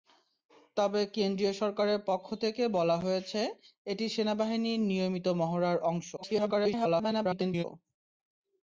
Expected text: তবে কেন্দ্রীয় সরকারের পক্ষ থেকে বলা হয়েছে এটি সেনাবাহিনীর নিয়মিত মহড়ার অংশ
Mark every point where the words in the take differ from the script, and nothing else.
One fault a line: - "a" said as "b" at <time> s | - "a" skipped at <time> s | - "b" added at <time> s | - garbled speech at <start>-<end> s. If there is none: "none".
- garbled speech at 6.2-7.6 s